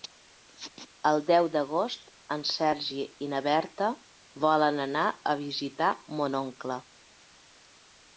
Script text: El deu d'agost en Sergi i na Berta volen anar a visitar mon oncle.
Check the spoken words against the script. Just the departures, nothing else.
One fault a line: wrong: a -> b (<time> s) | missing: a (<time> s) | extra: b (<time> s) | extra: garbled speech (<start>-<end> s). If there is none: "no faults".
no faults